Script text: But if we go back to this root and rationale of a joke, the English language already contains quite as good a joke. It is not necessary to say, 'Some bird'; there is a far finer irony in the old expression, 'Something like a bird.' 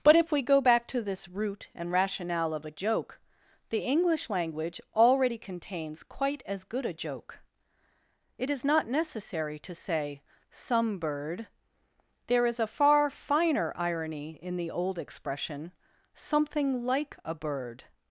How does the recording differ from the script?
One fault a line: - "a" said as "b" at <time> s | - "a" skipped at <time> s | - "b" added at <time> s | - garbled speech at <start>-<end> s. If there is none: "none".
none